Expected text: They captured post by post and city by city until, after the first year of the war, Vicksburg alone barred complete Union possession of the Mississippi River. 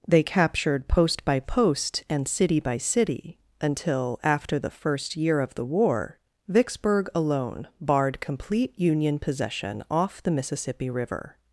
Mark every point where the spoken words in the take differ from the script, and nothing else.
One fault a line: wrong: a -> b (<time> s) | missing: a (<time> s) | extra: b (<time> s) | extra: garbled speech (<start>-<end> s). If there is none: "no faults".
wrong: of -> off (9.9 s)